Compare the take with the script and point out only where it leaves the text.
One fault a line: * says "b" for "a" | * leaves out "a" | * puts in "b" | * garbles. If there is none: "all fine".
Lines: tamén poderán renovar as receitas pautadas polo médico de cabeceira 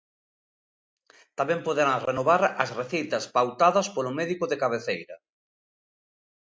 all fine